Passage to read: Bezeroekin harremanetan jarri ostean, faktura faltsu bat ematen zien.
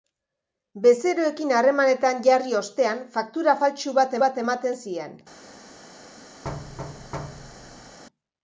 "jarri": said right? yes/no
yes